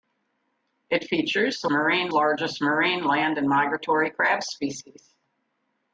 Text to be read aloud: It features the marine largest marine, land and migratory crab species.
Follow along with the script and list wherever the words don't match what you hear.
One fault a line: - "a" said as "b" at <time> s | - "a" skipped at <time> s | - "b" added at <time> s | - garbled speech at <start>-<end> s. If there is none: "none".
none